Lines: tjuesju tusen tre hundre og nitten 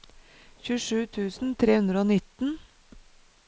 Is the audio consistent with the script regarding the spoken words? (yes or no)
yes